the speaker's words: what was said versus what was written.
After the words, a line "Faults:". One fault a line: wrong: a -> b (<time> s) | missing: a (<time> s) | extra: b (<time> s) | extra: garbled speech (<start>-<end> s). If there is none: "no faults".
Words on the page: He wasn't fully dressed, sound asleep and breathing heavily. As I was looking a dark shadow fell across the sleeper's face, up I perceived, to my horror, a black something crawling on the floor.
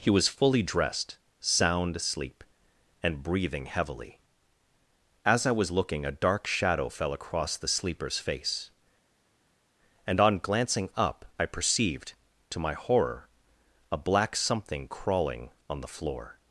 He was fully dressed, sound asleep and breathing heavily. As I was looking a dark shadow fell across the sleeper's face, and on glancing up I perceived, to my horror, a black something crawling on the floor.
Faults:
wrong: wasn't -> was (0.1 s)
extra: and on glancing (10.1 s)